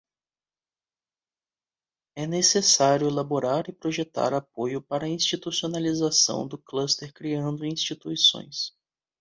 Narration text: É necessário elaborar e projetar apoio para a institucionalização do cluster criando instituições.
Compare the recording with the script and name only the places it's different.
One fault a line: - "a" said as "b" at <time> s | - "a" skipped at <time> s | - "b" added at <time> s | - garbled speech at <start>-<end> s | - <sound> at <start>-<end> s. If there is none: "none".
none